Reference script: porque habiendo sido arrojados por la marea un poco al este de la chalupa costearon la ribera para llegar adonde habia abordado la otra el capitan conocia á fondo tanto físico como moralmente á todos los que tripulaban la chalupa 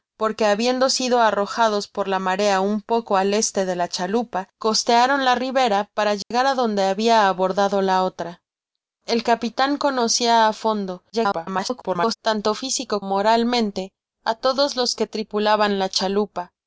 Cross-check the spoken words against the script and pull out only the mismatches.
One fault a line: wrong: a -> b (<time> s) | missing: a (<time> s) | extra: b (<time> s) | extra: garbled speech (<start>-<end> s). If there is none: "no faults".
extra: garbled speech (11.1-12.1 s)
missing: como (13.0 s)